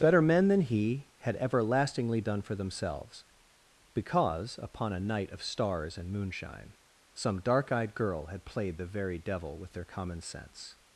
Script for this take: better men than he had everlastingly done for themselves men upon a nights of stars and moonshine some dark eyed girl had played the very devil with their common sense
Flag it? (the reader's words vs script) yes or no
yes